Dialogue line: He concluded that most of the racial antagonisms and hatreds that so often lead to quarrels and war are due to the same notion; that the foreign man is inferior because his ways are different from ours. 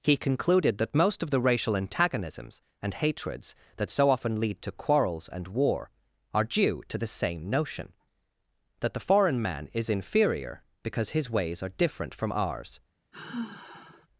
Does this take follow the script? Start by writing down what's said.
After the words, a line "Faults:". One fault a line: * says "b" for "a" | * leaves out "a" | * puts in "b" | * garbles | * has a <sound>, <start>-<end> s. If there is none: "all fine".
He concluded that most of the racial antagonisms and hatreds that so often lead to quarrels and war are due to the same notion; that the foreign man is inferior because his ways are different from ours.
Faults:
* has a sigh, 13.1-14.1 s